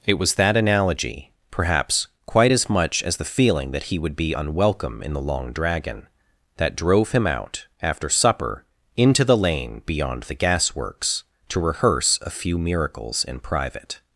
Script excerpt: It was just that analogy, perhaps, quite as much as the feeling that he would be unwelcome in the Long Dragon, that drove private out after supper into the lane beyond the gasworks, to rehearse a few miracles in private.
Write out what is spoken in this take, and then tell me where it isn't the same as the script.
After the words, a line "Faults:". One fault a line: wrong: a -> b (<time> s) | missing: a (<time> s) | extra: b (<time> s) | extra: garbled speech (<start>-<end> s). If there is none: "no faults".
It was that analogy, perhaps, quite as much as the feeling that he would be unwelcome in the Long Dragon, that drove him out after supper into the lane beyond the gasworks, to rehearse a few miracles in private.
Faults:
missing: just (0.3 s)
wrong: private -> him (7.1 s)